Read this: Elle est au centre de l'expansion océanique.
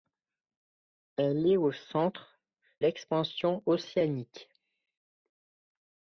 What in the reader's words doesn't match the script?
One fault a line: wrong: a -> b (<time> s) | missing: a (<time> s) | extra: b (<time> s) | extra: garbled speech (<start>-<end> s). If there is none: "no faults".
missing: de (2.4 s)